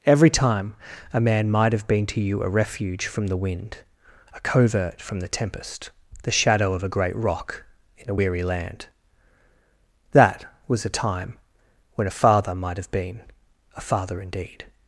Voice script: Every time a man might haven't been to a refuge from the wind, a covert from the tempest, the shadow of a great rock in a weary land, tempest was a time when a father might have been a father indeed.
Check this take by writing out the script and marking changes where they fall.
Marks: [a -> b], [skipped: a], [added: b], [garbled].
Every time a man might [haven't -> have] been to [added: you] a refuge from the wind, a covert from the tempest, the shadow of a great rock in a weary land, [tempest -> that] was a time when a father might have been a father indeed.